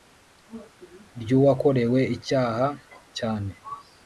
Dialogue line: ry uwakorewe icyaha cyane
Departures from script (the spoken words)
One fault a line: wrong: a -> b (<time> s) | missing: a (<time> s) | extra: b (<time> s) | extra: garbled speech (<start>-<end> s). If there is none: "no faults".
no faults